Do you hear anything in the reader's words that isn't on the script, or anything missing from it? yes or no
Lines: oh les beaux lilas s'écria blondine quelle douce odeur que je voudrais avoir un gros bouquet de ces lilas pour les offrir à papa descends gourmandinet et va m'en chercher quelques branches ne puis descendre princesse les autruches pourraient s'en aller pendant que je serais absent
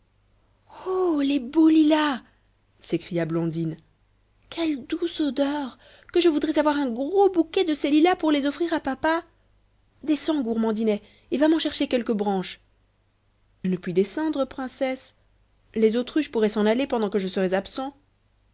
no